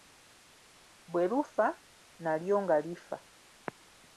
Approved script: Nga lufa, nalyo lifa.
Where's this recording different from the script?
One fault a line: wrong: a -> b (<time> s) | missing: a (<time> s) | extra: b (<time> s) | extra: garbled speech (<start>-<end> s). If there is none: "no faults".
wrong: Nga -> Bwe (1.1 s)
extra: nga (2.6 s)